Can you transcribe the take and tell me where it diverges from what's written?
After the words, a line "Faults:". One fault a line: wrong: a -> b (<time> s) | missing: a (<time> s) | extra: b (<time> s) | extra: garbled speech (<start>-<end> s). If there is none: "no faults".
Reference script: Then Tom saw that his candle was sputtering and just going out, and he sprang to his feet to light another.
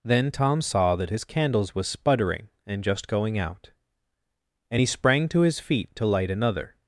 Then Tom saw that his candles was sputtering and just going out, and he sprang to his feet to light another.
Faults:
wrong: candle -> candles (1.2 s)